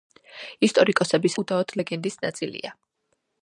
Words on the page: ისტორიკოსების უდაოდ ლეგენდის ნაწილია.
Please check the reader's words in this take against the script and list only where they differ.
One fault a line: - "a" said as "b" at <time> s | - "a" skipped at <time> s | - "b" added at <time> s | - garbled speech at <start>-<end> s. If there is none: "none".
none